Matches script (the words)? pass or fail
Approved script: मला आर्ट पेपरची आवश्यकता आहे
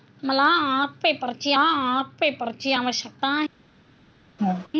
fail